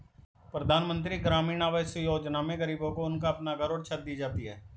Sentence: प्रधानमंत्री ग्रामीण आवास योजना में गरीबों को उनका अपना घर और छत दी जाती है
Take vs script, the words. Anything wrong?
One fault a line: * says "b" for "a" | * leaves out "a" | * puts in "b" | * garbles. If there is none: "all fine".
all fine